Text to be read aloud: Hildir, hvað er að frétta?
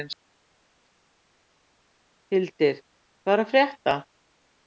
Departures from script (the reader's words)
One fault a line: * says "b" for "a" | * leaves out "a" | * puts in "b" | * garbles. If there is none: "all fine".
all fine